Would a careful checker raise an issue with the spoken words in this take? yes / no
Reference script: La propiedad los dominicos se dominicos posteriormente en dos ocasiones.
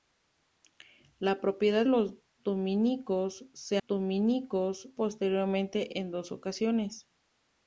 no